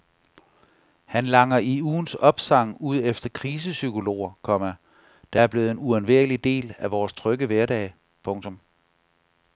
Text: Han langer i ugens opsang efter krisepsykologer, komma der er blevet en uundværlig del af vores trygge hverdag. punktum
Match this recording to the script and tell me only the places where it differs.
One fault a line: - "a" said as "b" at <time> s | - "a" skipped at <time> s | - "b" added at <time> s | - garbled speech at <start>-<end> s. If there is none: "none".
- "ud" added at 2.8 s